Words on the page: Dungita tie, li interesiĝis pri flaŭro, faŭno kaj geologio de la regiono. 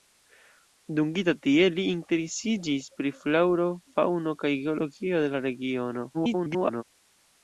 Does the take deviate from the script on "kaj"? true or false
false